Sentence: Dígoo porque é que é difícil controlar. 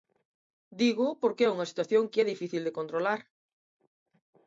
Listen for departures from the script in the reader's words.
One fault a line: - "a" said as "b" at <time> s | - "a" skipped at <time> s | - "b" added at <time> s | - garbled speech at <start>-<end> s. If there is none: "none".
- "unha situación" added at 1.5 s
- "de" added at 2.6 s